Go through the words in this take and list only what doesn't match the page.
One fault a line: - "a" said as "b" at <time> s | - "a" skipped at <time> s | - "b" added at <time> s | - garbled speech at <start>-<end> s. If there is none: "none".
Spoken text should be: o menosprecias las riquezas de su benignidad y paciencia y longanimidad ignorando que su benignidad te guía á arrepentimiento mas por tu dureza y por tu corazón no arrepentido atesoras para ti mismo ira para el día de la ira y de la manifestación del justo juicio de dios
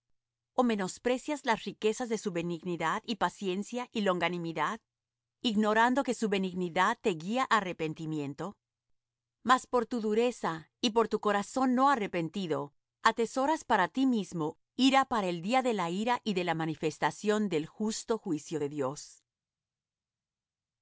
none